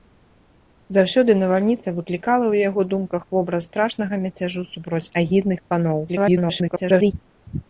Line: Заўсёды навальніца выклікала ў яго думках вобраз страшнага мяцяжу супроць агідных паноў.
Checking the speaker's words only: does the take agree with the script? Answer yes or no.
no